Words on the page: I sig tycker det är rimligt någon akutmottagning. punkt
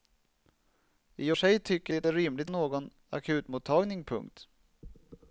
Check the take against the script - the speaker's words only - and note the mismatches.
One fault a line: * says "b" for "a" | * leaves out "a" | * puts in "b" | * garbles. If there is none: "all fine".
all fine